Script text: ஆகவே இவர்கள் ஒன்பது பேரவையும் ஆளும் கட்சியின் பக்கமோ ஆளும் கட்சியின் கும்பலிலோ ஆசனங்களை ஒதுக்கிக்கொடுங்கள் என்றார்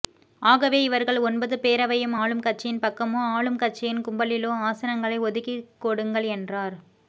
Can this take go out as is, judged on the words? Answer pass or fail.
pass